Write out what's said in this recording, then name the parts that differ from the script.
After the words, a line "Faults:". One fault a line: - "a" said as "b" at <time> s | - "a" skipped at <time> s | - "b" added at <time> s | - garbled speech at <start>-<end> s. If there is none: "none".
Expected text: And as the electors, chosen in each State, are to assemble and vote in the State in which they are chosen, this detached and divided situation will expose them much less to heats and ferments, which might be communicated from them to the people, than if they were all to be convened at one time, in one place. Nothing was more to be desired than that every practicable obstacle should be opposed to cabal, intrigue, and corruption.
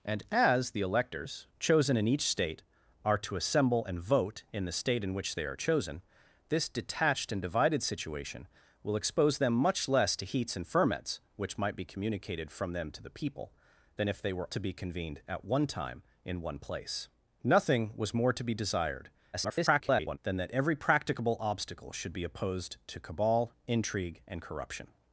And as the electors, chosen in each State, are to assemble and vote in the State in which they are chosen, this detached and divided situation will expose them much less to heats and ferments, which might be communicated from them to the people, than if they were to be convened at one time, in one place. Nothing was more to be desired [garbled] than that every practicable obstacle should be opposed to cabal, intrigue, and corruption.
Faults:
- "all" skipped at 14.5 s
- garbled speech at 19.3-20.2 s